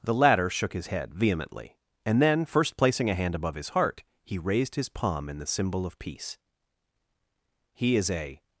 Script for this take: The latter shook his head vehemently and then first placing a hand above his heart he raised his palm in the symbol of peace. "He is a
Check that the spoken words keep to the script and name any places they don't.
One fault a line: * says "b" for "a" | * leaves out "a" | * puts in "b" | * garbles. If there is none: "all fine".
all fine